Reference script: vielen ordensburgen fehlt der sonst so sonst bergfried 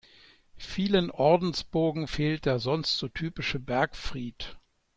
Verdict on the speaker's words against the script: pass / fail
fail